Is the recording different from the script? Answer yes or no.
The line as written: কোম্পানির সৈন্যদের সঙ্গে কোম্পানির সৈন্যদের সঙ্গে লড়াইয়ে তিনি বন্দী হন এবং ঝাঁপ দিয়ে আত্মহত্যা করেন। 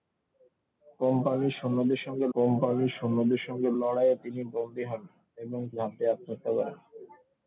no